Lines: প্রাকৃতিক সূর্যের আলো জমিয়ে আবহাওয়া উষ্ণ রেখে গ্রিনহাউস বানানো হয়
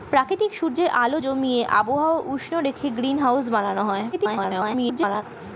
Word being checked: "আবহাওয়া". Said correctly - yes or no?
yes